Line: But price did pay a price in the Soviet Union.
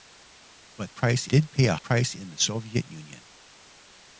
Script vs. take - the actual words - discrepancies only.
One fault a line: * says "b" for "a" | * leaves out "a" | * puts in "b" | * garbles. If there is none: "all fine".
all fine